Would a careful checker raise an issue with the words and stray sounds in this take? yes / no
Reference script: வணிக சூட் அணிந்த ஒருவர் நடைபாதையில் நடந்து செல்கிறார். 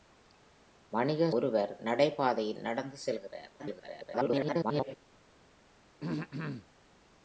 yes